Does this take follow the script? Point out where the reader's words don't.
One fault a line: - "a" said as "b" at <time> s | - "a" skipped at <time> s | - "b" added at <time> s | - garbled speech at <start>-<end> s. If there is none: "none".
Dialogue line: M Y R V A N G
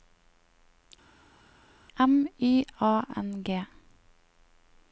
- "R V" skipped at 2.7 s